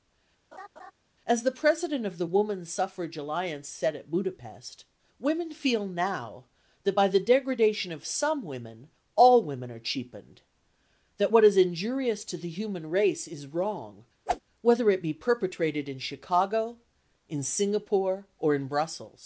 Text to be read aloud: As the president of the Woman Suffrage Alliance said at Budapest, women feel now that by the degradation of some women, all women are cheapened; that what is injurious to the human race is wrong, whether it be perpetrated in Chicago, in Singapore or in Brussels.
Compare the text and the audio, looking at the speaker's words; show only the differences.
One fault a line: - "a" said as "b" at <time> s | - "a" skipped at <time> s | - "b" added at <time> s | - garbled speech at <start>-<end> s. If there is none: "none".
none